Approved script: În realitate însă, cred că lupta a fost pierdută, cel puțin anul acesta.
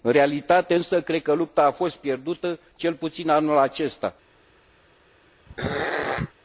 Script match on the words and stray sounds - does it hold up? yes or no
no